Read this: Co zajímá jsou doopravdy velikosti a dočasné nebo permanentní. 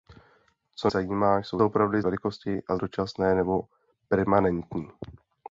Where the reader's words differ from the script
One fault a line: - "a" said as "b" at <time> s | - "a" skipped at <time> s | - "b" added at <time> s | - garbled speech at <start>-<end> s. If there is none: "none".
none